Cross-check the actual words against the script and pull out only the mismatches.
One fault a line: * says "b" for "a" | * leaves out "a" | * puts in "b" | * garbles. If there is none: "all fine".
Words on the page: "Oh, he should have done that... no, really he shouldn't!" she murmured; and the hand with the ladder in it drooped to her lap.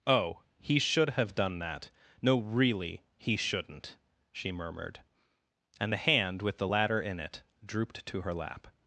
all fine